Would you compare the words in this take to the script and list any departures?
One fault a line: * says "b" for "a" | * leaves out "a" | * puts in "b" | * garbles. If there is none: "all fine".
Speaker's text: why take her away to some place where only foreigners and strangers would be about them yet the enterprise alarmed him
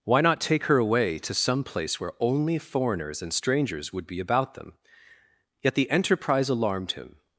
* puts in "not"